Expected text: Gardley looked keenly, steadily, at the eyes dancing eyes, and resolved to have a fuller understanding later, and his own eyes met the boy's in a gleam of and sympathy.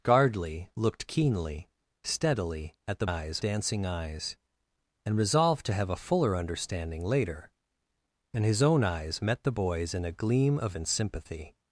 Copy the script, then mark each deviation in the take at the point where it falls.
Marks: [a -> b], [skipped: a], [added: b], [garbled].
Gardley looked keenly, steadily, at the eyes dancing eyes, and resolved to have a fuller understanding later, and his own eyes met the boy's in a gleam of and sympathy.